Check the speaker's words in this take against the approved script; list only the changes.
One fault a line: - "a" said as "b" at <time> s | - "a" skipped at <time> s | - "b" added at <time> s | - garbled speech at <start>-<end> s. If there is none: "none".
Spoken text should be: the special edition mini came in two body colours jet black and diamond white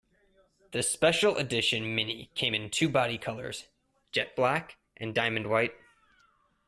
none